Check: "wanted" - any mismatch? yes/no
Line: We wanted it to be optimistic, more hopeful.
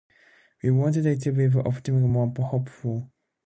no